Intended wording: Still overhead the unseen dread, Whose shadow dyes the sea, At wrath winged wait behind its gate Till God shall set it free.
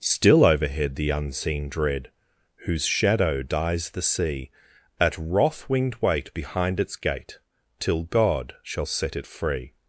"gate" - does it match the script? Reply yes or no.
yes